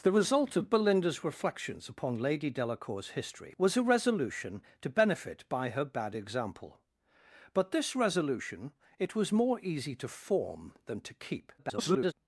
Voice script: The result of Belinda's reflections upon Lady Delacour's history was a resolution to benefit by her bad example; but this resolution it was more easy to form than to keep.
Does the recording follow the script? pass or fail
fail